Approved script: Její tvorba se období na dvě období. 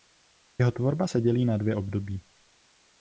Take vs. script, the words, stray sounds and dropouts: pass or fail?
fail